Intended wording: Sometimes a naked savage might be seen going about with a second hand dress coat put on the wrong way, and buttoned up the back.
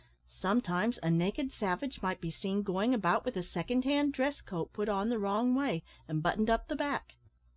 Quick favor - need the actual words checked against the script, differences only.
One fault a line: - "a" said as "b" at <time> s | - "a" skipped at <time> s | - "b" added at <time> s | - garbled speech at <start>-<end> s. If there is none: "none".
none